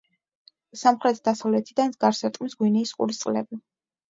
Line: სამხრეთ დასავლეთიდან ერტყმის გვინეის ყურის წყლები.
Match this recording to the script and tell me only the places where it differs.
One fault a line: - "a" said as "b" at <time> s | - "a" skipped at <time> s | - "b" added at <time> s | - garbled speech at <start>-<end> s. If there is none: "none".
- "გარს" added at 2.1 s